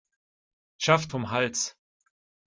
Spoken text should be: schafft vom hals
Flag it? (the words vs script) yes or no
no